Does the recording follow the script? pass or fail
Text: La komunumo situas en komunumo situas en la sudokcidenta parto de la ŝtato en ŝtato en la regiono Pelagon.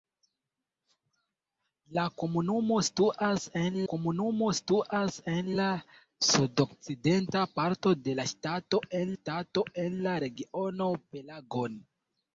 pass